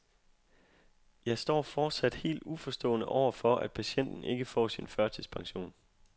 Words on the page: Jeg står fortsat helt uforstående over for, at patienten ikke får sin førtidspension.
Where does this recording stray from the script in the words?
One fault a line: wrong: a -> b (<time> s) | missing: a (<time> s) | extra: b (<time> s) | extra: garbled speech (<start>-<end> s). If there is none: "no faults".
no faults